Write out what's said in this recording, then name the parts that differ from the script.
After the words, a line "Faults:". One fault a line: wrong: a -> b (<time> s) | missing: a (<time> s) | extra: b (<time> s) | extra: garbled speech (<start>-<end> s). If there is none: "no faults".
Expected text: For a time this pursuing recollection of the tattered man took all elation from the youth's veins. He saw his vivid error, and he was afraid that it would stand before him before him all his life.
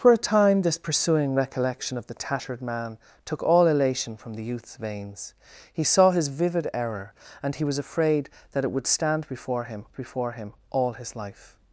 For a time this pursuing recollection of the tattered man took all elation from the youth's veins. He saw his vivid error, and he was afraid that it would stand before him before him all his life.
Faults:
no faults